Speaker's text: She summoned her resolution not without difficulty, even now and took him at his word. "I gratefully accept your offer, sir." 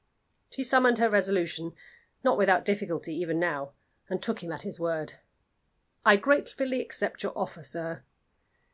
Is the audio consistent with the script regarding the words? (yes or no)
yes